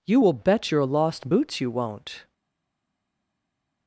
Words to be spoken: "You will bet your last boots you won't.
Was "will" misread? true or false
false